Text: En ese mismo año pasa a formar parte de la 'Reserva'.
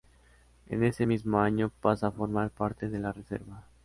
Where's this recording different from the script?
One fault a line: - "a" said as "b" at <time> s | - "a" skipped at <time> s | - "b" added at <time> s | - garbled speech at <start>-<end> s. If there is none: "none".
none